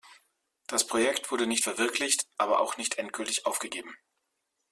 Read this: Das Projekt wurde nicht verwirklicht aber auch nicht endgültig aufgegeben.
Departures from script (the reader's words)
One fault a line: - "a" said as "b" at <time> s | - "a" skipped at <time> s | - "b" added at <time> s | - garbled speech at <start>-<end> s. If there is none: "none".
none